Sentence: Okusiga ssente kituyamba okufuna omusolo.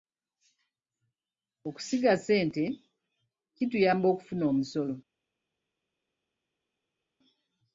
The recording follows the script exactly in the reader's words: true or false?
true